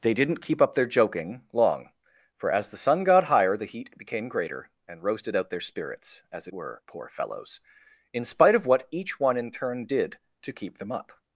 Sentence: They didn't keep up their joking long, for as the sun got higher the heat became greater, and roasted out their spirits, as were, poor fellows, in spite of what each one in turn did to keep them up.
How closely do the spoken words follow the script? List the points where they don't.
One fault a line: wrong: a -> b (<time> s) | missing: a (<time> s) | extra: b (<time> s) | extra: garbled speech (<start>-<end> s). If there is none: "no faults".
no faults